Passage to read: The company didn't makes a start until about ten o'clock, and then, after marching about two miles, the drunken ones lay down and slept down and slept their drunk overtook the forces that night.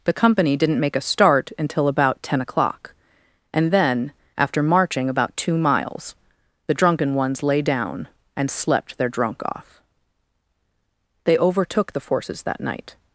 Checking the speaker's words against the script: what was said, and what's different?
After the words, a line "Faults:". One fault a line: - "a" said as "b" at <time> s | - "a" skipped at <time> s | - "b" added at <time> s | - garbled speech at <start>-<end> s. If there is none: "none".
The company didn't make a start until about ten o'clock, and then, after marching about two miles, the drunken ones lay down and slept their drunk off. They overtook the forces that night.
Faults:
- "makes" said as "make" at 0.8 s
- "down and slept their drunk" said as "their drunk off They" at 9.0 s